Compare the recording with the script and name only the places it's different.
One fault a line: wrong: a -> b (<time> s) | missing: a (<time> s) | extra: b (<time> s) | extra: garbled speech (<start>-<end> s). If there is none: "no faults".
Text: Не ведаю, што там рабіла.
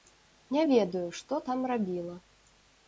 no faults